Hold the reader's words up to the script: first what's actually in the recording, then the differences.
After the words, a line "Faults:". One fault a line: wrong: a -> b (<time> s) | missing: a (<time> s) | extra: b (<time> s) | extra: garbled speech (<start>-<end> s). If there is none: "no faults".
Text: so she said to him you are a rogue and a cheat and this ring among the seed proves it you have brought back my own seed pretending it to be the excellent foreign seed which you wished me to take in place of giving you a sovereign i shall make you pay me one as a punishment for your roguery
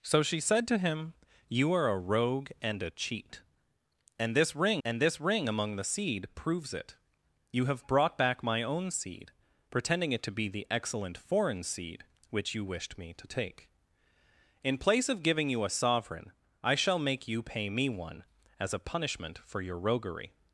so she said to him you are a rogue and a cheat and this ring and this ring among the seed proves it you have brought back my own seed pretending it to be the excellent foreign seed which you wished me to take in place of giving you a sovereign i shall make you pay me one as a punishment for your roguery
Faults:
extra: and this ring (4.8 s)